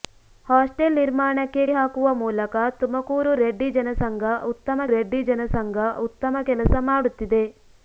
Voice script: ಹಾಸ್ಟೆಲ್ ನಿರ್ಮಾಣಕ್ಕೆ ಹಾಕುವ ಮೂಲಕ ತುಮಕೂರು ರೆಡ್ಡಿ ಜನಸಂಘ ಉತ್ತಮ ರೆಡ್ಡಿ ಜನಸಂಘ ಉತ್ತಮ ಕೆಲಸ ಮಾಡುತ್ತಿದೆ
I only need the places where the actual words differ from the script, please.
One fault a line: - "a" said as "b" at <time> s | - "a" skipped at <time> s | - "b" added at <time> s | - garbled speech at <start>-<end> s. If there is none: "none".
none